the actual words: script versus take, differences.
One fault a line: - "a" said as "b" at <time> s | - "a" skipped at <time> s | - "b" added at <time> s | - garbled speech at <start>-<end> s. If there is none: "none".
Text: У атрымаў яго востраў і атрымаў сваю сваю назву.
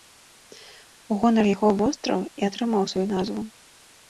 - "атрымаў" said as "гонар" at 1.2 s
- "сваю" skipped at 3.1 s